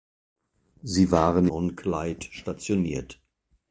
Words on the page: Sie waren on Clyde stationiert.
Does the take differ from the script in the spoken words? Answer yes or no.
no